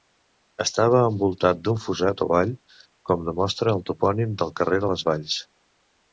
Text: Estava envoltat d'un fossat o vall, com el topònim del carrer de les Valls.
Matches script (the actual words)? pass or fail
fail